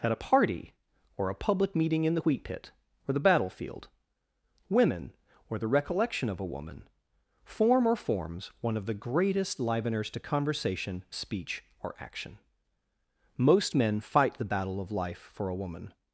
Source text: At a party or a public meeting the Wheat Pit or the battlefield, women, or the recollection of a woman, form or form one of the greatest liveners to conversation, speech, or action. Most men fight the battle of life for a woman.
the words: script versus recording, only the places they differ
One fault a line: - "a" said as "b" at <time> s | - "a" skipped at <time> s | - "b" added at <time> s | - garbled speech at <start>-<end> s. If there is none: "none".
- "in" added at 2.0 s
- "form" said as "forms" at 7.9 s